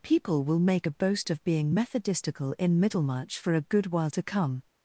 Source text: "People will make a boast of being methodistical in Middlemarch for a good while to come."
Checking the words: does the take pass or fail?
pass